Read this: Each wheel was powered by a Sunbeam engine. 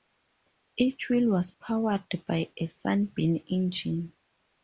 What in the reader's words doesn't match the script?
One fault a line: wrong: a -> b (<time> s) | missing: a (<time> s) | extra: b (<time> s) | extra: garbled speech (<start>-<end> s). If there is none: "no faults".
no faults